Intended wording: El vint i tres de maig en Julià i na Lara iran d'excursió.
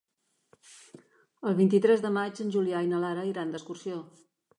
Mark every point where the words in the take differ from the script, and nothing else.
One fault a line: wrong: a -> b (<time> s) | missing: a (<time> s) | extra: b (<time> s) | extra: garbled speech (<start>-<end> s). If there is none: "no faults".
no faults